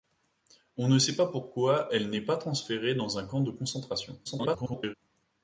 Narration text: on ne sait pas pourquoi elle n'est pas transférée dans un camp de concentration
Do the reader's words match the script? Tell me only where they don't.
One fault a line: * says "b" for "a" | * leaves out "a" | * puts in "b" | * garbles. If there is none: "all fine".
* garbles